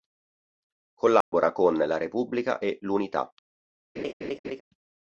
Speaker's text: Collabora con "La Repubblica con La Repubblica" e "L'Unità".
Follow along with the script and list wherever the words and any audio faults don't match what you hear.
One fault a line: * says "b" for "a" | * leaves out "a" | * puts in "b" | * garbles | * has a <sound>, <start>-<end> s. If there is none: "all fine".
* has a dropout, 1.2-1.3 s
* leaves out "con La Repubblica"
* has a laugh, 4.0-4.6 s